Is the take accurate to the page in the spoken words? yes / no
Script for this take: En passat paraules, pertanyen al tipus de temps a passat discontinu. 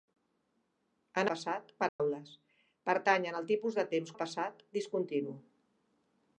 yes